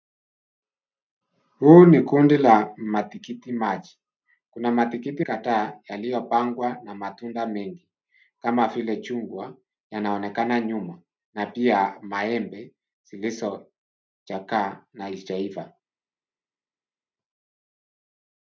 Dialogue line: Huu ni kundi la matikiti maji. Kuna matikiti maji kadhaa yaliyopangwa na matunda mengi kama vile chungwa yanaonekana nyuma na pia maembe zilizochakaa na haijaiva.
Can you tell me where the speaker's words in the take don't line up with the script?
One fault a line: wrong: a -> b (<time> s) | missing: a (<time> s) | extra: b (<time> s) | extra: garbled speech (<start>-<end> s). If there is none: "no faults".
missing: maji (5.2 s)